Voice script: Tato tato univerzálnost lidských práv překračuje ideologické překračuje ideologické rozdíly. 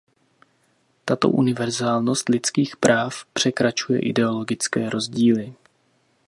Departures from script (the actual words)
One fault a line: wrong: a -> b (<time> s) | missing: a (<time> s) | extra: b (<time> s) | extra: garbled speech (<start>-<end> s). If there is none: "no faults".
missing: tato (1.3 s)
missing: překračuje ideologické (4.9 s)